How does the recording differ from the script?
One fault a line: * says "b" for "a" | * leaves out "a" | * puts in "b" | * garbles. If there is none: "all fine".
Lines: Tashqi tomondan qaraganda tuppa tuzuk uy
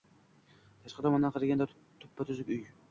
all fine